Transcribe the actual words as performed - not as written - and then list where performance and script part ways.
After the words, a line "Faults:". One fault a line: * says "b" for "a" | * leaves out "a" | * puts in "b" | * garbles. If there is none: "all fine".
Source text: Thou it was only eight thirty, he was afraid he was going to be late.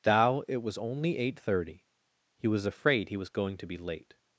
Thou it was only eight thirty, he was afraid he was going to be late.
Faults:
all fine